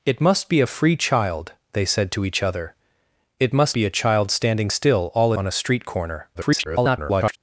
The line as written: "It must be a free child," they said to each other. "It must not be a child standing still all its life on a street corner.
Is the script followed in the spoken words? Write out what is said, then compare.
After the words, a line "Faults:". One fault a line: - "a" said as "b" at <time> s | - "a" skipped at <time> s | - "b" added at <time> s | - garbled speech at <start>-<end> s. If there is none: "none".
"It must be a free child," they said to each other. "It must be a child standing still all on a street corner. [garbled]
Faults:
- "not" skipped at 3.8 s
- "its life" skipped at 5.3 s
- garbled speech at 6.3-7.4 s